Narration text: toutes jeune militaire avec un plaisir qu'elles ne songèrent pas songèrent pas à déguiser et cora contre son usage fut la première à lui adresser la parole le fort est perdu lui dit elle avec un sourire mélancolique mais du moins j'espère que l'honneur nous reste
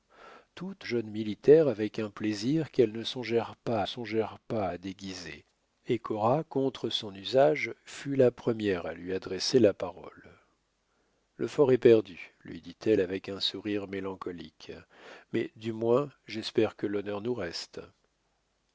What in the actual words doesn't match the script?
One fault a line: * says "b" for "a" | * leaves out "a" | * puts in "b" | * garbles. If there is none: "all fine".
all fine